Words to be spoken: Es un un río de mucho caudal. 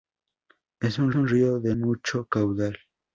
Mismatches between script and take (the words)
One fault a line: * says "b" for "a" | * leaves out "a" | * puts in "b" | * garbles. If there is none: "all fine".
all fine